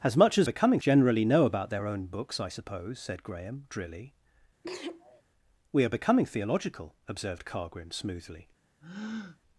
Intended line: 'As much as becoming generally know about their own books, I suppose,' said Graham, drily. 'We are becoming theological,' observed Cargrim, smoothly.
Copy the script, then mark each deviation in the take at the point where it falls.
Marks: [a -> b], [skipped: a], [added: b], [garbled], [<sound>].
'As much as becoming generally know about their own books, I suppose,' said Graham, drily. [sneeze] 'We are becoming theological,' observed Cargrim, smoothly. [breath]